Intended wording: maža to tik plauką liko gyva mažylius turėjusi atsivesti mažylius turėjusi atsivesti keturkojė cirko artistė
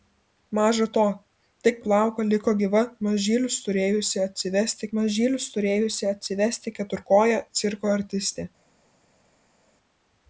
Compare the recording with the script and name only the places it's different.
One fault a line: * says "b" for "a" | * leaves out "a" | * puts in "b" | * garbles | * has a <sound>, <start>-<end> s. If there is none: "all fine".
all fine